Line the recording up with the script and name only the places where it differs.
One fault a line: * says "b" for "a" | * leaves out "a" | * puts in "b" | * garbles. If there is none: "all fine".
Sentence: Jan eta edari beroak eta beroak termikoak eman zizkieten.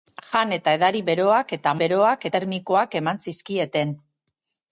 all fine